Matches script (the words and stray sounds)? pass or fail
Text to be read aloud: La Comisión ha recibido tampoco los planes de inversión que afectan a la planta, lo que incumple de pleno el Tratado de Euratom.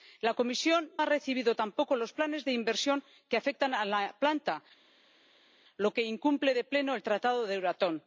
pass